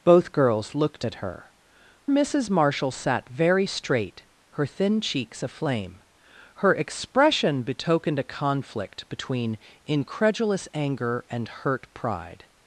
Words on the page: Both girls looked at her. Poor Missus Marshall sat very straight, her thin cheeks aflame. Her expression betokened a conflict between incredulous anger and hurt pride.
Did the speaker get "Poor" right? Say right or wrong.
wrong